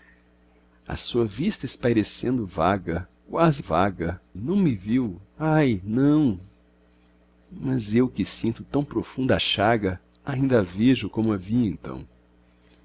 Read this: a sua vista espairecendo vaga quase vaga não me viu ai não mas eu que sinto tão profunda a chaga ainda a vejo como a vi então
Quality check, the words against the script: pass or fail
pass